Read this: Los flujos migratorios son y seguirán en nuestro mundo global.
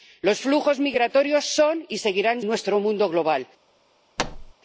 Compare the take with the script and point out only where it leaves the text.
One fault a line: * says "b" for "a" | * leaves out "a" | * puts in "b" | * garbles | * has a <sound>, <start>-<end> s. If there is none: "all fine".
* has a thud, 4.2-4.5 s